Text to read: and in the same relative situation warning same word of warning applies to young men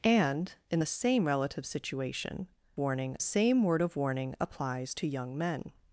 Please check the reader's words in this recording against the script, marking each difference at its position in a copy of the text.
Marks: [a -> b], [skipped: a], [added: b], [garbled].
and in the same relative situation warning same word of warning applies to young men